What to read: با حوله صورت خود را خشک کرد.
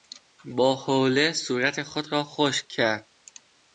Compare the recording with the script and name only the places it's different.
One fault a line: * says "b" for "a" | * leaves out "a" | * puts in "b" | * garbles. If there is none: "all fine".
all fine